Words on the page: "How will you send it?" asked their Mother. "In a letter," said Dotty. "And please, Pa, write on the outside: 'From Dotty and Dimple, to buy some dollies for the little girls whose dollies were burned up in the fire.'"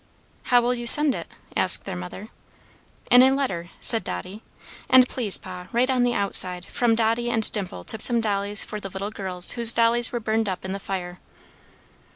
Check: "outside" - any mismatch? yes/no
no